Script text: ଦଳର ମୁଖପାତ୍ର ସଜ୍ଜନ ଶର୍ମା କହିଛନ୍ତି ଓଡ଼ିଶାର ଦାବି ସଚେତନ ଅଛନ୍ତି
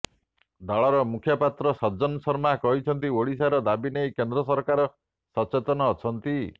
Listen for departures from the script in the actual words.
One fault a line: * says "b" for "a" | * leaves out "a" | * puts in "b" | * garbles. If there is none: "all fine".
* puts in "ନେଇ କେନ୍ଦ୍ର ସରକାର"